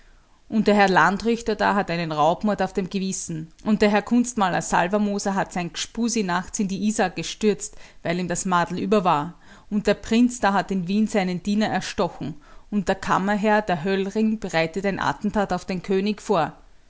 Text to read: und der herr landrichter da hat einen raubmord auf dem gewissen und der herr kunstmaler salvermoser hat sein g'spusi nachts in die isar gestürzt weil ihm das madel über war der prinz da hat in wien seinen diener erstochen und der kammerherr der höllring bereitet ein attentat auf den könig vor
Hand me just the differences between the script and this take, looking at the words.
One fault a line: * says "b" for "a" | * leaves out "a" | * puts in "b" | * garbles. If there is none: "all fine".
* puts in "und"